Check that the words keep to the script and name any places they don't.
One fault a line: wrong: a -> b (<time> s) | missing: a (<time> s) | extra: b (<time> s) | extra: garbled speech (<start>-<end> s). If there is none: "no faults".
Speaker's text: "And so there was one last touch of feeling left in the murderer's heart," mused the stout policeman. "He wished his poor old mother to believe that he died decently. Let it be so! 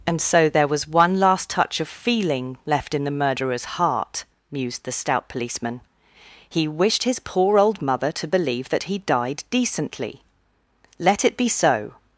no faults